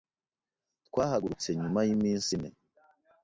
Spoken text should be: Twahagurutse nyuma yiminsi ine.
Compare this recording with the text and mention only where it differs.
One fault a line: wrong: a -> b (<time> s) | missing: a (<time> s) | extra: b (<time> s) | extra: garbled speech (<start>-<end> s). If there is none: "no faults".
no faults